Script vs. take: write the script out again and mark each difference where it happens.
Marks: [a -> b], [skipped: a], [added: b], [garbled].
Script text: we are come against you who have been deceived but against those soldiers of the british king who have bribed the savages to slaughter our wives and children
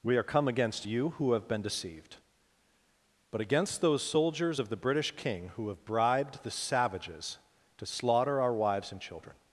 we are come against you who have been deceived but against those soldiers of the british king who have bribed the savages to slaughter our wives and children